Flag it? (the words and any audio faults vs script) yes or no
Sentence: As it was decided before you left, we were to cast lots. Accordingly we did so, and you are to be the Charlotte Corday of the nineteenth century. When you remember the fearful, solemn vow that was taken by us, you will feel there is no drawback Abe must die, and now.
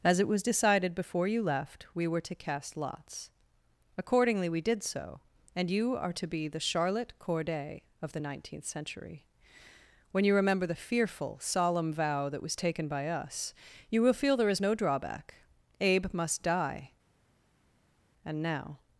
no